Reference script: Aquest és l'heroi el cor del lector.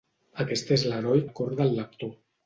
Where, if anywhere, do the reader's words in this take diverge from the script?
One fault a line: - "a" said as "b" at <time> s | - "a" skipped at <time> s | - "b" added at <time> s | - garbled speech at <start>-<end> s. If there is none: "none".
none